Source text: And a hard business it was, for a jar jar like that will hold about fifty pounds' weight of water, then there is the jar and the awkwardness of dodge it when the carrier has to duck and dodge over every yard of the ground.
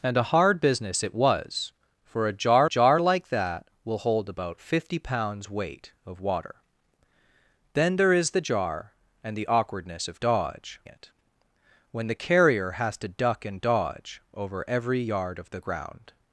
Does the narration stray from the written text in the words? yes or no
no